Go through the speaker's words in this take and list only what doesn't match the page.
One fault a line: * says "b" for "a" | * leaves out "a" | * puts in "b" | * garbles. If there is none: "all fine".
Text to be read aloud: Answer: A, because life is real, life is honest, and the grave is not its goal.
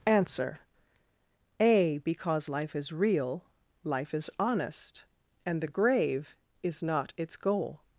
all fine